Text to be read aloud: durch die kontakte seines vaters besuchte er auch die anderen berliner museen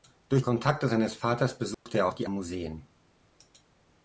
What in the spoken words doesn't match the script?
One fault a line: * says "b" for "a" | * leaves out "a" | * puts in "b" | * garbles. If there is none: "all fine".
* leaves out "die"
* leaves out "anderen berliner"